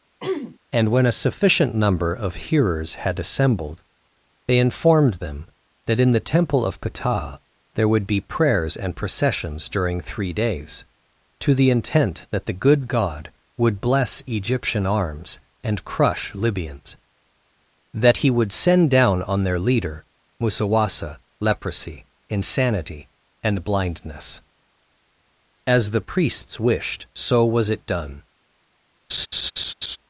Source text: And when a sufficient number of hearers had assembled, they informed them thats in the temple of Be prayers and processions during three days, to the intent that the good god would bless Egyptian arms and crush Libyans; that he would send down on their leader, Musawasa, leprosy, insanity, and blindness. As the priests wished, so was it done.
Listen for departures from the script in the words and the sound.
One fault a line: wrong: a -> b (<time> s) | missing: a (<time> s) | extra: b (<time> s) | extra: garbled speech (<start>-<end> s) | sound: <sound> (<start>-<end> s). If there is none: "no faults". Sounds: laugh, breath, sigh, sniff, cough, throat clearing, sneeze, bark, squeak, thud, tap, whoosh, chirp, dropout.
sound: throat clearing (0.2-0.6 s)
wrong: thats -> that (5.9 s)
extra: Ptah there would (6.8 s)
sound: laugh (29.1-30.0 s)